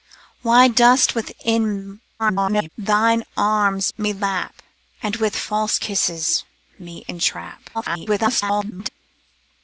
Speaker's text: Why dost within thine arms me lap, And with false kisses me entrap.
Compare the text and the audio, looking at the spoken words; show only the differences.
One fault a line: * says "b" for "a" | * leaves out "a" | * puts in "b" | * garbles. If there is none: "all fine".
* garbles
* leaves out "me"
* garbles